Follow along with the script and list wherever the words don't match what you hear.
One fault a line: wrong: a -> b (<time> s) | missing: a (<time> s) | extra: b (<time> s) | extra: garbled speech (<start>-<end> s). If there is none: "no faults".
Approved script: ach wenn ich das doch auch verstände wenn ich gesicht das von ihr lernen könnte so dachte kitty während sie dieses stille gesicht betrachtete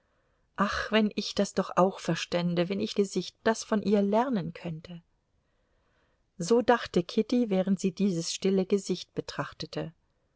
no faults